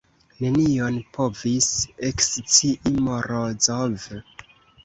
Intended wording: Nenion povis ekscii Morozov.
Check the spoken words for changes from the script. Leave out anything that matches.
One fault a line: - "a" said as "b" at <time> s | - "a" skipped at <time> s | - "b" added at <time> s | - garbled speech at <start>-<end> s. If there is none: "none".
none